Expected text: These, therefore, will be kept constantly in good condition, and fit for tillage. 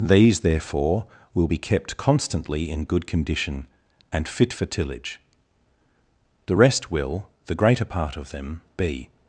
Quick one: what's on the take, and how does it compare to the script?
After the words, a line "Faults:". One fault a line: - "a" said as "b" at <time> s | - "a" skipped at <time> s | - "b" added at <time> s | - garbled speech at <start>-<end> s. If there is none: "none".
These, therefore, will be kept constantly in good condition, and fit for tillage. The rest will, the greater part of them, be
Faults:
- "The rest will the greater part of them be" added at 6.4 s